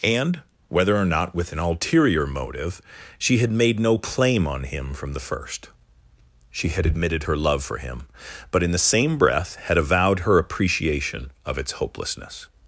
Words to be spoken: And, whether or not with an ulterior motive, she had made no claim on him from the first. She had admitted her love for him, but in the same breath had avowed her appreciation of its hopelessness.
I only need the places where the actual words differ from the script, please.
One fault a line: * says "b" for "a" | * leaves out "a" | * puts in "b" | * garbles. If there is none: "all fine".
all fine